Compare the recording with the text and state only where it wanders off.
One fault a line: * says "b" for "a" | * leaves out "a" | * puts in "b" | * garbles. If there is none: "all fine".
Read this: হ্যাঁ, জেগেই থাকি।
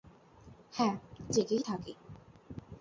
all fine